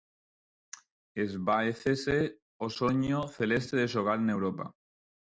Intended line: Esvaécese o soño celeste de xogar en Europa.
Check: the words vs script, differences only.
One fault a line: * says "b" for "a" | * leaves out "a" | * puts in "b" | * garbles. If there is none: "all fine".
all fine